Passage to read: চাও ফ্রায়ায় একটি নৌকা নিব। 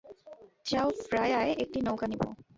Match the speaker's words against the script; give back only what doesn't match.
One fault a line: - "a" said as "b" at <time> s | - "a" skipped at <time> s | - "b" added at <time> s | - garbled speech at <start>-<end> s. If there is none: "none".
none